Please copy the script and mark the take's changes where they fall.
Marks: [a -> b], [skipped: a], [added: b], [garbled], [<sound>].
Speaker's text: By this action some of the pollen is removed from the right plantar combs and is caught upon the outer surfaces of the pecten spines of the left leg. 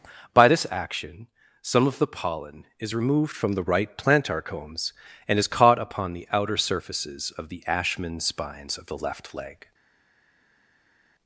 By this action some of the pollen is removed from the right plantar combs and is caught upon the outer surfaces of the [pecten -> ashman] spines of the left leg.